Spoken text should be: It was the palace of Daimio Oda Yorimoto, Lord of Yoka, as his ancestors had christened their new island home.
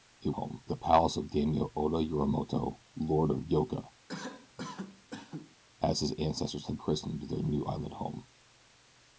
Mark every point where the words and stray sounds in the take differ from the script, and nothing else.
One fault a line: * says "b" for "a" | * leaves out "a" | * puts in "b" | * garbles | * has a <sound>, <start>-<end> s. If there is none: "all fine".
* says "home" for "was"
* has a cough, 4.1-5.6 s